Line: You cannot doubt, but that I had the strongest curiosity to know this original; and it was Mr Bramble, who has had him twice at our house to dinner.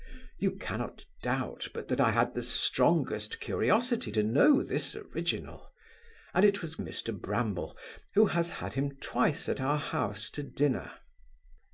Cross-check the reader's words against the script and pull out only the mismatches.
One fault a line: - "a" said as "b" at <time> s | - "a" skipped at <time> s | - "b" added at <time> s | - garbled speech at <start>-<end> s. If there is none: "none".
none